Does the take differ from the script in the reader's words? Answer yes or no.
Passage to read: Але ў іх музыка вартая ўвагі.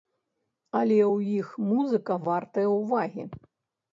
no